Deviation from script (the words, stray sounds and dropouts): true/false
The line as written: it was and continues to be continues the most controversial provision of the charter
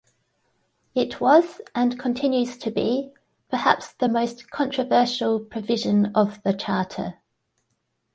true